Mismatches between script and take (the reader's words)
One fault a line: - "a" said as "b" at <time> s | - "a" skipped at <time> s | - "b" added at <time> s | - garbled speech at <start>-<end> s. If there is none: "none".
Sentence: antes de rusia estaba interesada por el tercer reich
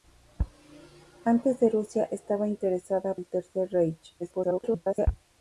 - "por" skipped at 3.1 s
- garbled speech at 4.2-5.1 s